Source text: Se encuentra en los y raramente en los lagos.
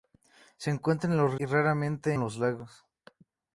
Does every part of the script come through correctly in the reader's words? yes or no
yes